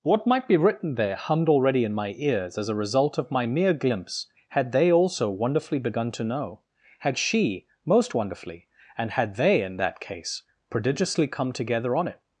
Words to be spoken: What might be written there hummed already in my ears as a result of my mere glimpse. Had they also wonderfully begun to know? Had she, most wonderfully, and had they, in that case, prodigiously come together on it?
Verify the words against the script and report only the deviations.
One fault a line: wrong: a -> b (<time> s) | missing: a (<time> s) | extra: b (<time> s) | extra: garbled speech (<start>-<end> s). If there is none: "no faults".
no faults